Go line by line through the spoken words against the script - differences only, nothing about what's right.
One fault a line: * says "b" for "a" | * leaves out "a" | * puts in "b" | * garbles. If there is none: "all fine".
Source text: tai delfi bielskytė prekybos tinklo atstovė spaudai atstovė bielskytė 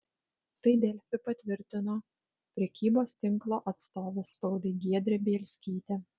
* says "patvirtino" for "bielskytė"
* says "giedrė" for "atstovė"